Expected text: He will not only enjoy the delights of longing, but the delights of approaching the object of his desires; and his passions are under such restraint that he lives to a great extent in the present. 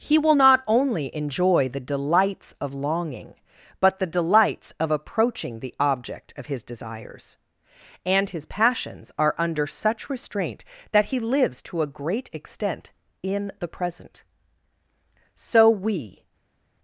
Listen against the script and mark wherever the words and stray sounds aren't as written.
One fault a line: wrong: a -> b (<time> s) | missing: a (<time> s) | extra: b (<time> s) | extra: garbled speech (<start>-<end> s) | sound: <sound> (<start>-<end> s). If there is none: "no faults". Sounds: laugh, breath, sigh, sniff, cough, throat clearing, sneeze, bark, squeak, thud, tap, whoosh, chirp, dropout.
extra: So we (15.3 s)